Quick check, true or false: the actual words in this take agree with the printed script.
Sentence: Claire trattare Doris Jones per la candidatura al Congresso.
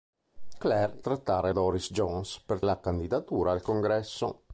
true